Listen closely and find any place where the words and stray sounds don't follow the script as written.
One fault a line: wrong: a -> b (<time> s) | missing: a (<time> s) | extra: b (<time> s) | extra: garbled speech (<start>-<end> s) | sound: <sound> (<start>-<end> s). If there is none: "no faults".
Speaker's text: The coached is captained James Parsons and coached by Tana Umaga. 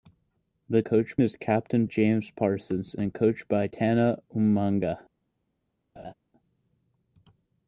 sound: laugh (6.0-6.1 s)